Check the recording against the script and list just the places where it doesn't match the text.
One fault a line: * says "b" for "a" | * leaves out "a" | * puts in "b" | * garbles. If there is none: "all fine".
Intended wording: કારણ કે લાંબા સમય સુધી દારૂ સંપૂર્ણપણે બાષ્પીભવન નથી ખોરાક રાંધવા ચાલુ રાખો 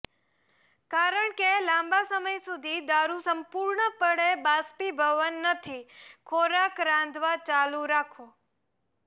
all fine